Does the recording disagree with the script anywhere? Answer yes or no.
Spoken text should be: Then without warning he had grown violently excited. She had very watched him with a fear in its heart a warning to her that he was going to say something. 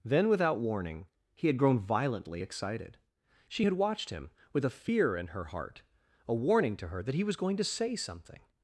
yes